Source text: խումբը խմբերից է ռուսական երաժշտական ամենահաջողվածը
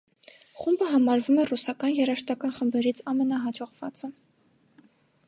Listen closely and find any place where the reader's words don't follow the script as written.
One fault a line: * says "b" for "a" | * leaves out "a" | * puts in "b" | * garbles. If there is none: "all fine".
* says "համարվում" for "խմբերից"
* puts in "խմբերից"